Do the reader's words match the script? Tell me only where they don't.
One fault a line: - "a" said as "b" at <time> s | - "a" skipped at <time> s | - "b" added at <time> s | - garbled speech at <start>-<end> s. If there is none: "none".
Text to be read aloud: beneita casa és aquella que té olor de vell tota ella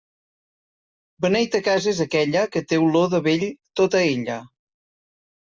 none